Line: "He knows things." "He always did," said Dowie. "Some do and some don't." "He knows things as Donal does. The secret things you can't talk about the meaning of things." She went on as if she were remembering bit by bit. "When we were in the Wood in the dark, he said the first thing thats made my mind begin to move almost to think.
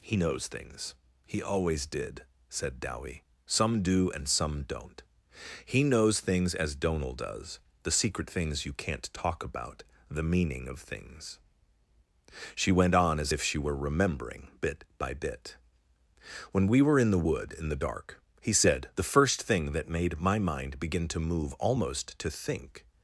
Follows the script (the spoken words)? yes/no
no